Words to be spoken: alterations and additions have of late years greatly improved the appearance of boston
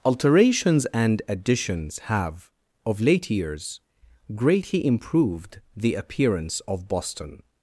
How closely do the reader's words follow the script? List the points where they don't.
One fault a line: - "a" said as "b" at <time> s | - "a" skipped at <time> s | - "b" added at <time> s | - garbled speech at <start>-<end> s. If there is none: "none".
none